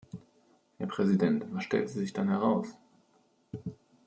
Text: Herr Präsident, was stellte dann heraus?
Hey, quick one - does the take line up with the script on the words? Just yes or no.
no